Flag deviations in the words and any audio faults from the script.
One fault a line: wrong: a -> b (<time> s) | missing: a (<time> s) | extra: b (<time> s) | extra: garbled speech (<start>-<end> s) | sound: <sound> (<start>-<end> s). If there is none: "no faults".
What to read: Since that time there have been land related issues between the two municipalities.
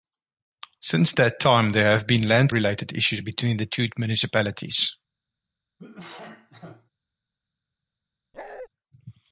sound: cough (5.8-6.9 s)
sound: bark (8.3-8.7 s)